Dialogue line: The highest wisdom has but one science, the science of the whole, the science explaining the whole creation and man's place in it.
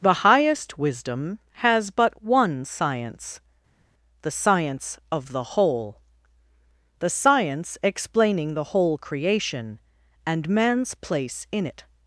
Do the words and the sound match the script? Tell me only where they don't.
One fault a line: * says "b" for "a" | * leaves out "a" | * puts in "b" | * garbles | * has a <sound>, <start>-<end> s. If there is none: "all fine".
all fine